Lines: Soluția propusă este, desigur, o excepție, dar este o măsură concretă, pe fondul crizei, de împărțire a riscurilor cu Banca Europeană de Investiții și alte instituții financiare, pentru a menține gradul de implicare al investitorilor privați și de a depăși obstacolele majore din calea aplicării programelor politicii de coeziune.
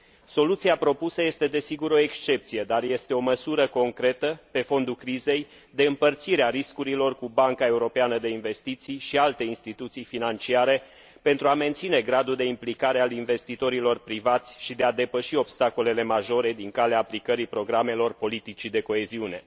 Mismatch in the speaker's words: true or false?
false